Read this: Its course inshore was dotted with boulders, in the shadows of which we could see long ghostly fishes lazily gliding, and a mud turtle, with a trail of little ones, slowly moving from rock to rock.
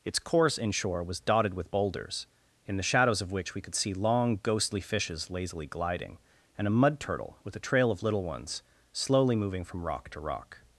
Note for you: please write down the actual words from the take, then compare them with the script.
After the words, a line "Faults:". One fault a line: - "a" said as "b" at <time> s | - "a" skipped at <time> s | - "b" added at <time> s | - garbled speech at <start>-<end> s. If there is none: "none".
Its course inshore was dotted with boulders, in the shadows of which we could see long ghostly fishes lazily gliding, and a mud turtle, with a trail of little ones, slowly moving from rock to rock.
Faults:
none